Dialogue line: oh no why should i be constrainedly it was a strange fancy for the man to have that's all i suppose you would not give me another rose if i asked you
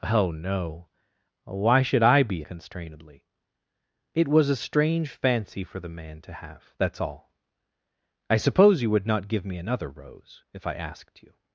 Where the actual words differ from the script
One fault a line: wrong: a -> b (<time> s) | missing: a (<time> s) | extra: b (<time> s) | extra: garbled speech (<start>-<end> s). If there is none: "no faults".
no faults